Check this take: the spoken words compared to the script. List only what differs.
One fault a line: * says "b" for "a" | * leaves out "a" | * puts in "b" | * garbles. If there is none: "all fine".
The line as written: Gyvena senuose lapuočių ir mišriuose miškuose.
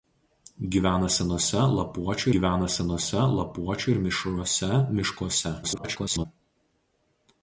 * puts in "gyvena senuose lapuočių"
* garbles